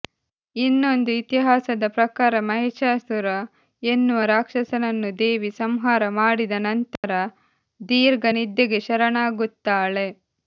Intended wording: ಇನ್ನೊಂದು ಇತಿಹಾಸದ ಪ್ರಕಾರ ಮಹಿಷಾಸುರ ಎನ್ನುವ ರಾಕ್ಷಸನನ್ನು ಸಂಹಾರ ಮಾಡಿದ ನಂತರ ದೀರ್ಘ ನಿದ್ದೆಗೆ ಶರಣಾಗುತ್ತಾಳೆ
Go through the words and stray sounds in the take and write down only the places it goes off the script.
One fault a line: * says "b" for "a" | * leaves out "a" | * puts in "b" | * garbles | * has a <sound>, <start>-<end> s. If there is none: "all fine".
* puts in "ದೇವಿ"
* has a dropout, 7.0-7.0 s